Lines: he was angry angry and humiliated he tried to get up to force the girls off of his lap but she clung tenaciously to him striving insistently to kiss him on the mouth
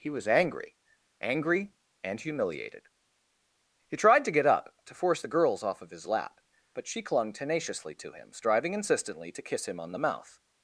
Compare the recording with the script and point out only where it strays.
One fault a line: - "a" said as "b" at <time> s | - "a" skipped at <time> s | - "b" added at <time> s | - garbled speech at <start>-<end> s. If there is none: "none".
none